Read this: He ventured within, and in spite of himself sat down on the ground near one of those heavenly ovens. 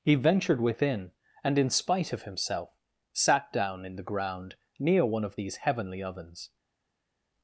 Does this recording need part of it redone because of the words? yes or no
yes